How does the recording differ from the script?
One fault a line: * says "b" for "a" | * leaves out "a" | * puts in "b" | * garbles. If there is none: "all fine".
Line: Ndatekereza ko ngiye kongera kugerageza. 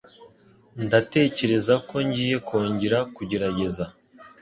all fine